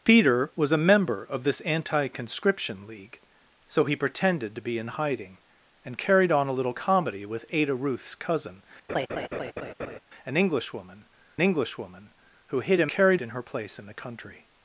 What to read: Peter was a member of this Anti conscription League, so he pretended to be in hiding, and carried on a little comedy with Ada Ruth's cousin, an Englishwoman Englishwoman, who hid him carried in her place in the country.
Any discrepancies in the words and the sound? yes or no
yes